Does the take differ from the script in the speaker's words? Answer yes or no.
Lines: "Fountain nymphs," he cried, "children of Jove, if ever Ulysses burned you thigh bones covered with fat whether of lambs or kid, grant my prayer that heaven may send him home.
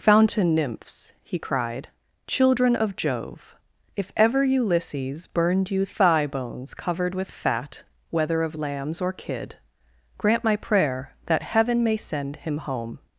no